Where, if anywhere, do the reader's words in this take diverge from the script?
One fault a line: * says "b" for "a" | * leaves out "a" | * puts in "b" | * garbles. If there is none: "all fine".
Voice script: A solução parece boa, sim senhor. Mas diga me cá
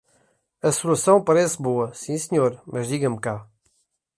all fine